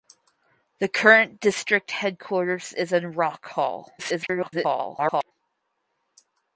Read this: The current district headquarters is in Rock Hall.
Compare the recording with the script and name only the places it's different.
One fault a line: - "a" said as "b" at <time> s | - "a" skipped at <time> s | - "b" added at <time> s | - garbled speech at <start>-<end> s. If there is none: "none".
- garbled speech at 4.0-5.3 s